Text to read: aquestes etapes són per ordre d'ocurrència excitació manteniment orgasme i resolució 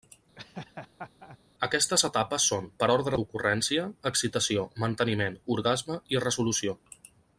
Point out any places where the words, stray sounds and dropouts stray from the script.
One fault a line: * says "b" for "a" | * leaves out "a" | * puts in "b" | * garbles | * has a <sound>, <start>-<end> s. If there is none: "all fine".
* has a laugh, 0.4-1.4 s